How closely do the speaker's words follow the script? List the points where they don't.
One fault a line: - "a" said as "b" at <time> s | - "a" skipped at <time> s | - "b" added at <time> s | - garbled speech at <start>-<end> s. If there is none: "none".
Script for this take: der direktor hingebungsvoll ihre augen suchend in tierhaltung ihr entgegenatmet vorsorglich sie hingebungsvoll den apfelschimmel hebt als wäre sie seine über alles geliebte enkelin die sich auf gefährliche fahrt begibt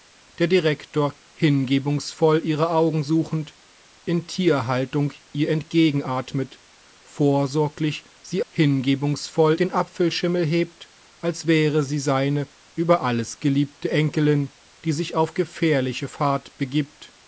none